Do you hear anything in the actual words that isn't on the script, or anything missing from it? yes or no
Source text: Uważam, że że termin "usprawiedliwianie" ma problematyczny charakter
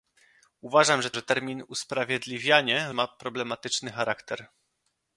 no